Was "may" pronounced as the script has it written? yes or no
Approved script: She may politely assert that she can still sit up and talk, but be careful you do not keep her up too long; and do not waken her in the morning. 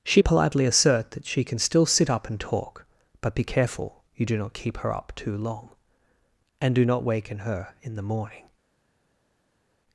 no